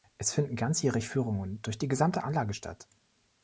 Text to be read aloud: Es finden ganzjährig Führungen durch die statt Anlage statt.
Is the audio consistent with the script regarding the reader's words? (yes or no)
no